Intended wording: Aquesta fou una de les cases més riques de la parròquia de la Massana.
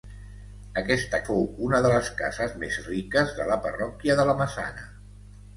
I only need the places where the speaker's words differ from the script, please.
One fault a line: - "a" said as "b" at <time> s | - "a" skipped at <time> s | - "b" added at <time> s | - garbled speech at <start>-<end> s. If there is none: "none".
none